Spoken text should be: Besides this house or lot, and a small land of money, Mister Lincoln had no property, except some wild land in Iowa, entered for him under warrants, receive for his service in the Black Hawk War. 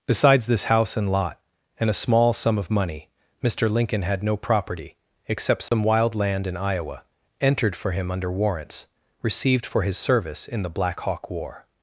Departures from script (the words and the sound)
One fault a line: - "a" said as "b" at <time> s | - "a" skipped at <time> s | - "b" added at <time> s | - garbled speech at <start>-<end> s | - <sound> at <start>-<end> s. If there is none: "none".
- "or" said as "and" at 1.0 s
- "land" said as "sum" at 2.3 s
- dropout at 5.7-5.7 s
- "receive" said as "received" at 9.2 s